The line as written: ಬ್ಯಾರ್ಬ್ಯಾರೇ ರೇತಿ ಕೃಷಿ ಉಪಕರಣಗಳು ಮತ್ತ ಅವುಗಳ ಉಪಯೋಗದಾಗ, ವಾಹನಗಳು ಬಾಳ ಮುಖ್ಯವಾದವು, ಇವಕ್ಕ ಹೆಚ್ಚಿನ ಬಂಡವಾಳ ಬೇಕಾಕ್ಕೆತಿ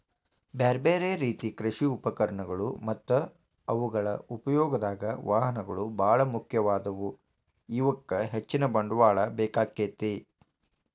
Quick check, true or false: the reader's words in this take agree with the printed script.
true